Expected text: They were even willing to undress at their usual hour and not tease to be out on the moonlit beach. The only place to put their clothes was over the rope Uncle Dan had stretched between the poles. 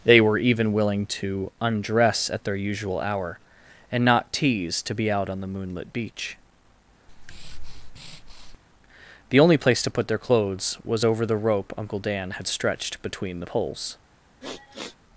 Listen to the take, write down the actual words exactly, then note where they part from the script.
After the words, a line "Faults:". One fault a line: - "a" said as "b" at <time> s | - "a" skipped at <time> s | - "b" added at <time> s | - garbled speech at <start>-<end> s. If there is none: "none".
They were even willing to undress at their usual hour and not tease to be out on the moonlit beach. The only place to put their clothes was over the rope Uncle Dan had stretched between the poles.
Faults:
none